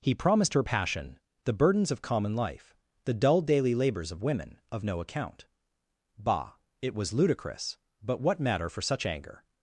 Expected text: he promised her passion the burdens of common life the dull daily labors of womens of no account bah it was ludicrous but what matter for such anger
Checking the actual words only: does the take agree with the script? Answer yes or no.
no